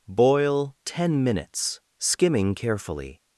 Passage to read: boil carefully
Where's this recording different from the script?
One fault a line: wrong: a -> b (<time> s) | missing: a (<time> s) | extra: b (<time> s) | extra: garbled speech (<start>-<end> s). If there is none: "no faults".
extra: ten minutes skimming (0.8 s)